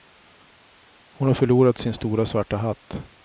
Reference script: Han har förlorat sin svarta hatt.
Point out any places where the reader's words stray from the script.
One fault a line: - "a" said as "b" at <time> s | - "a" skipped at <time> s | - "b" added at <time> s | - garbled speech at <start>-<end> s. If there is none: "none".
- "Han" said as "Hon" at 1.1 s
- "stora" added at 1.9 s